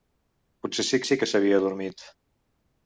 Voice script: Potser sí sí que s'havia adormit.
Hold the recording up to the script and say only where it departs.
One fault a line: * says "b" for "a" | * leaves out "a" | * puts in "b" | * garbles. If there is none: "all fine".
all fine